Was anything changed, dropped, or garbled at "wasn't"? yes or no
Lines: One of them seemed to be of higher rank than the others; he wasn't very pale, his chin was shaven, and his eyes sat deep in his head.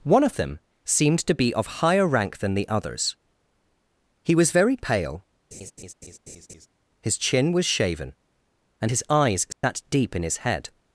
yes